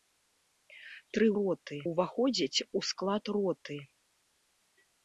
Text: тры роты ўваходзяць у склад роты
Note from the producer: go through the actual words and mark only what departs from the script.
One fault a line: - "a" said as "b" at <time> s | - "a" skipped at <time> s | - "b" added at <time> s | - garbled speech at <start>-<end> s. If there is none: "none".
none